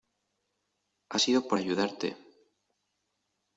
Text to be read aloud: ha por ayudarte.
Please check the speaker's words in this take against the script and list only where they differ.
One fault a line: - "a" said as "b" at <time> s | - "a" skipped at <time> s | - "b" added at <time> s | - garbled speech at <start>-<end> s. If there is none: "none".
- "sido" added at 1.2 s